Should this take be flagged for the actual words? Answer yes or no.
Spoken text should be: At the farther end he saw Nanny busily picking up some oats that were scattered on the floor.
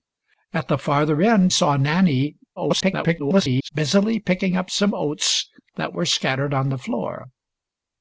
yes